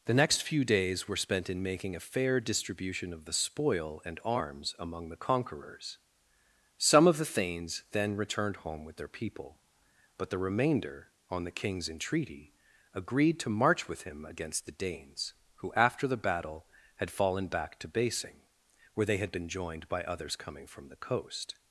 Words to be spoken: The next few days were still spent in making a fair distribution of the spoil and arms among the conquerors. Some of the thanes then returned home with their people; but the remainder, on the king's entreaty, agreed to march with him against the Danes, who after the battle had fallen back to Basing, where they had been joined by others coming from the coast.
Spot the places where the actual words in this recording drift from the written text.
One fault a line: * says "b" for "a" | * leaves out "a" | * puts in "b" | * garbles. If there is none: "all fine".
* leaves out "still"